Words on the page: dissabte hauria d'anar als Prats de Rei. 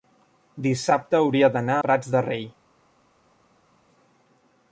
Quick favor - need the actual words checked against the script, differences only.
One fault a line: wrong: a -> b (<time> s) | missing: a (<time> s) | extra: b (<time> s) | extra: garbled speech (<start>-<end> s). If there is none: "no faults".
missing: als (1.8 s)